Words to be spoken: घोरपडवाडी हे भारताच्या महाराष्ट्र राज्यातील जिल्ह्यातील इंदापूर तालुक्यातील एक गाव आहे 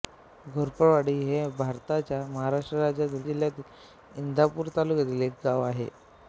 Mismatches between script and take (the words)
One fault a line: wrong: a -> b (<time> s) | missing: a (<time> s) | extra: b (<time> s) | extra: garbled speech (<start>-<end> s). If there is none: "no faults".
no faults